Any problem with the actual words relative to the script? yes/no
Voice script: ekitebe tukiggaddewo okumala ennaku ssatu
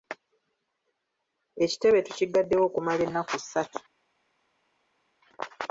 no